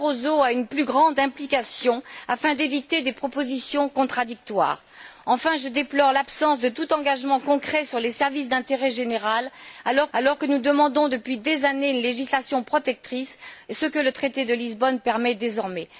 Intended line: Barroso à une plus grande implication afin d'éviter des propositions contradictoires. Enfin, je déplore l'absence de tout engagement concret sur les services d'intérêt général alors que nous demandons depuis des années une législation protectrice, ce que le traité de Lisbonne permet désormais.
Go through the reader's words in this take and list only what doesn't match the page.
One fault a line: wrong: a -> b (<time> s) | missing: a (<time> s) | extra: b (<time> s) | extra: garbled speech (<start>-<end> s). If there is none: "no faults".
extra: alors (10.1 s)